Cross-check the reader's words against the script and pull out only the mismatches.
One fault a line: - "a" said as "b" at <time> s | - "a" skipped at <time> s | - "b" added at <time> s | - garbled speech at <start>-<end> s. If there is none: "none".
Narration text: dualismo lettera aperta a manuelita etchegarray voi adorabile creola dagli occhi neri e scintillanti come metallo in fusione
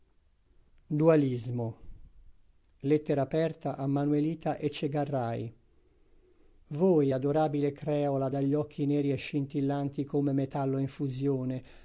none